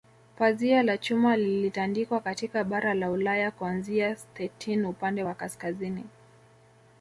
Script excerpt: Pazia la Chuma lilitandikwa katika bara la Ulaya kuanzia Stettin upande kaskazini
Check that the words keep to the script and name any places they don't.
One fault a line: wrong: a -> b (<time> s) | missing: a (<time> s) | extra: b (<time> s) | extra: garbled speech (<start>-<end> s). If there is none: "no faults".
extra: wa (5.2 s)